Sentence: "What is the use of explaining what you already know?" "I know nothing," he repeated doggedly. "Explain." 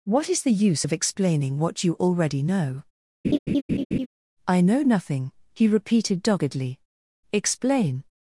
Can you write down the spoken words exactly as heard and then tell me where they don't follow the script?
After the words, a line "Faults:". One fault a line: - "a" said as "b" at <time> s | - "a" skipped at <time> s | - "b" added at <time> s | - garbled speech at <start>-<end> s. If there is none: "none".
"What is the use of explaining what you already know?" "I know nothing," he repeated doggedly. "Explain."
Faults:
none